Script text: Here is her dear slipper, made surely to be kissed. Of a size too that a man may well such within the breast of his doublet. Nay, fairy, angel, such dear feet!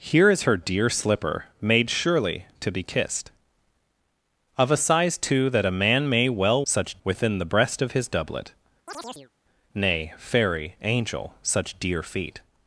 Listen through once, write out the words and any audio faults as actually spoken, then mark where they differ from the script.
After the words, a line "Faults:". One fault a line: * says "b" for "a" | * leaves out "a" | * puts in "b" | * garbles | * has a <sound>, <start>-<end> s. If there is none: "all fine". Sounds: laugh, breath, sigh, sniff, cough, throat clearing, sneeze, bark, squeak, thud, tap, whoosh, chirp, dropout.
Here is her dear slipper, made surely to be kissed. Of a size too that a man may well such within the breast of his doublet. Nay, fairy, angel, such dear feet!
Faults:
* has a chirp, 8.9-9.3 s